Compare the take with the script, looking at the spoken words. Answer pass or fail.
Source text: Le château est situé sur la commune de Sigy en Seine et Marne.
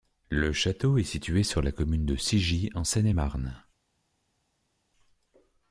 pass